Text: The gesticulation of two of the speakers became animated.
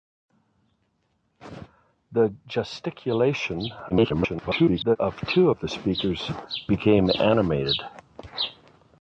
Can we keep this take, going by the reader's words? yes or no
no